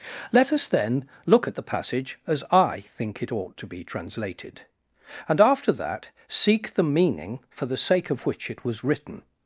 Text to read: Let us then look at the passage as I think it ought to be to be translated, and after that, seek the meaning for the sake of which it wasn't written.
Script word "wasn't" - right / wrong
wrong